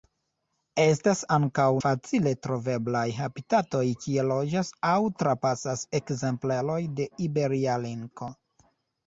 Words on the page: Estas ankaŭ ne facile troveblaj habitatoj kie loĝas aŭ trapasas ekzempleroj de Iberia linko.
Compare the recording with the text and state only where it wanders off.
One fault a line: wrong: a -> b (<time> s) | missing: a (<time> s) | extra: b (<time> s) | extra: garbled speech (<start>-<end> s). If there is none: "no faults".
missing: ne (1.6 s)